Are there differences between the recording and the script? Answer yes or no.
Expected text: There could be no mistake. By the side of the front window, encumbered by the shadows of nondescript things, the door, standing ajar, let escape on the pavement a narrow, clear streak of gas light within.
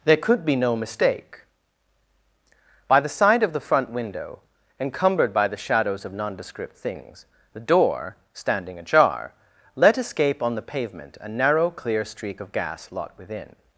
yes